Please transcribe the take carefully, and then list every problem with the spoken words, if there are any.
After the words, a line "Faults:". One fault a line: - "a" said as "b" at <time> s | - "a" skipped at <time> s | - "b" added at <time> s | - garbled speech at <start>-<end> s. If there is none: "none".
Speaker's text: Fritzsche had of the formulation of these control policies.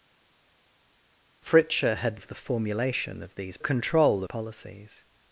Fritzsche had of the formulation of these control policies.
Faults:
none